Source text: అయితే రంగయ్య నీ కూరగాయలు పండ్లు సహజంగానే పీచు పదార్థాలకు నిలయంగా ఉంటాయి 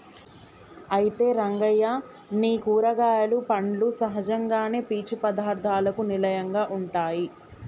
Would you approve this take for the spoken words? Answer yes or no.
yes